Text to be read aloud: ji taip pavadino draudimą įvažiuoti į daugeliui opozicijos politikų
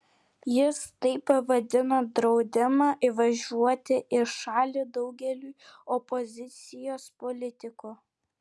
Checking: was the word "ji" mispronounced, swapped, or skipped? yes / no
yes